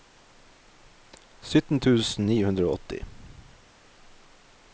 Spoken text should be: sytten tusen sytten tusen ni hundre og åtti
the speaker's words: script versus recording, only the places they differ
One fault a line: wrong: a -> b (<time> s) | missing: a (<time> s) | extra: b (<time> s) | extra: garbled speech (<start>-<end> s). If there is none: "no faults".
missing: sytten tusen (2.2 s)